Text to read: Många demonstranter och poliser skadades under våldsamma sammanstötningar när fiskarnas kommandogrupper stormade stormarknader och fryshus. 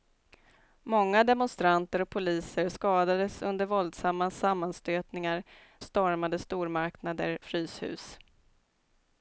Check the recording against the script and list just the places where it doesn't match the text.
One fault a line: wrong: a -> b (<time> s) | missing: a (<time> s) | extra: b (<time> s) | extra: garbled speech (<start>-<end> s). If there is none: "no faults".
missing: när fiskarnas kommandogrupper (5.4 s)
missing: och (7.4 s)